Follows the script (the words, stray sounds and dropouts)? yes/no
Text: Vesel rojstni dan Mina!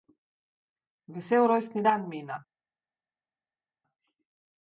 yes